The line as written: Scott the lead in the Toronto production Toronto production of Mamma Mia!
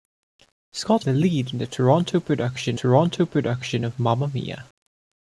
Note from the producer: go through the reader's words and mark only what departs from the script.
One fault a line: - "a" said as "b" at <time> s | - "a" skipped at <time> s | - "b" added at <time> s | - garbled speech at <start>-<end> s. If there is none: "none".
none